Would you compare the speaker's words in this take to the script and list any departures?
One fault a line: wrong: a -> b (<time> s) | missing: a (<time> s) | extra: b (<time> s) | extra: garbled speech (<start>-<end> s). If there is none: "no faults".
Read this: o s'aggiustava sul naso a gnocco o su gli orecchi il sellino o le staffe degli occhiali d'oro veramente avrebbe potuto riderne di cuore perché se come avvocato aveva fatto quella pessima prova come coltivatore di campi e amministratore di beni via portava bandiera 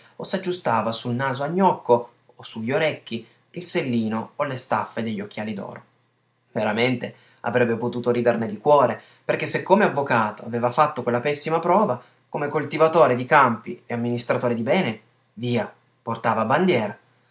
no faults